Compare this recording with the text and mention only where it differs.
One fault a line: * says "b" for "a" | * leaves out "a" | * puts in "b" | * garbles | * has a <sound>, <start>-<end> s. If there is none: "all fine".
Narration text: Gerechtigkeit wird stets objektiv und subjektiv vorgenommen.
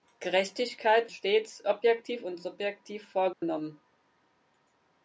* leaves out "wird"
* has a dropout, 3.3-3.4 s